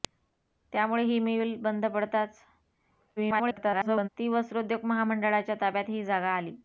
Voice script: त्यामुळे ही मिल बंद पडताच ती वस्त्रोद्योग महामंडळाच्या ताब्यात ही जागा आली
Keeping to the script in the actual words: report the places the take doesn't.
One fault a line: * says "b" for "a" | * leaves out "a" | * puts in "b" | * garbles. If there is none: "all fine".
* garbles